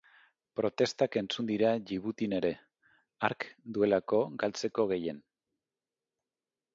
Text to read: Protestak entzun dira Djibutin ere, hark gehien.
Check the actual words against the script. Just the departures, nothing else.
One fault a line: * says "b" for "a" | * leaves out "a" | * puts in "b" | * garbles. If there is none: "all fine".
* puts in "duelako galtzeko"